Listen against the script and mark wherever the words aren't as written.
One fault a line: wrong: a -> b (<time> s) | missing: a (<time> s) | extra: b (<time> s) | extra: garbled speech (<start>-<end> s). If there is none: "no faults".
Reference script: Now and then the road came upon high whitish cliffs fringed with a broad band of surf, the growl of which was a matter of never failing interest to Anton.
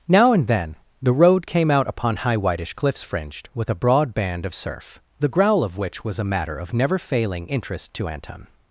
extra: out (1.7 s)